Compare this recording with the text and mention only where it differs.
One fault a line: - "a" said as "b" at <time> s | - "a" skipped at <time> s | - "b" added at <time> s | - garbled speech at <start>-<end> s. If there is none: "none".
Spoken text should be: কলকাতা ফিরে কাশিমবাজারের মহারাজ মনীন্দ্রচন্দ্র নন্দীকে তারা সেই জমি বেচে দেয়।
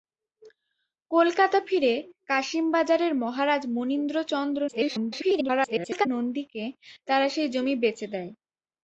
- garbled speech at 4.7-6.1 s